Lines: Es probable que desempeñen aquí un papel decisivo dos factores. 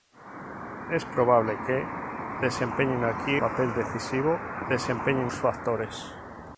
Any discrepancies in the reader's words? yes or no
yes